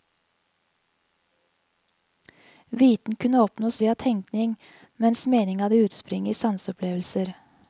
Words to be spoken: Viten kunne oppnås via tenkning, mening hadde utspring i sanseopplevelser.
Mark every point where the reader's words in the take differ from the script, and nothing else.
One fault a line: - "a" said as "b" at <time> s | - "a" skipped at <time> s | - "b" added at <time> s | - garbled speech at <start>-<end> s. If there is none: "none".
- "mens" added at 5.0 s